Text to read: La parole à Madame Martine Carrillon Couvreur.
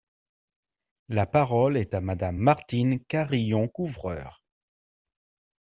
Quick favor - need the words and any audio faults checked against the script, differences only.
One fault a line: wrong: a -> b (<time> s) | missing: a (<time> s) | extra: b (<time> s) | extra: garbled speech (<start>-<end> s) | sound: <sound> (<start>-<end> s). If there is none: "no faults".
extra: est (1.8 s)